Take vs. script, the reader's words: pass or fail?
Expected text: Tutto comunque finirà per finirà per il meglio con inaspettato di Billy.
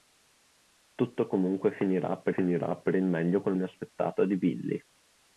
pass